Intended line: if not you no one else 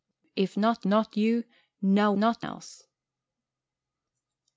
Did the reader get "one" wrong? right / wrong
wrong